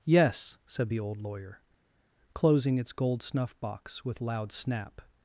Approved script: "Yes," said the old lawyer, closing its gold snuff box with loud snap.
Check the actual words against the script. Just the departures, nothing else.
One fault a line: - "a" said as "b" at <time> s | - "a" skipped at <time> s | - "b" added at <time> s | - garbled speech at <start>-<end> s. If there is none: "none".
none